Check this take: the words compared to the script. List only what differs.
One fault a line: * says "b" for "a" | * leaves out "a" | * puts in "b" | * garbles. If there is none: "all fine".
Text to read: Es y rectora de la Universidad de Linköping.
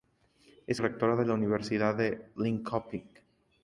all fine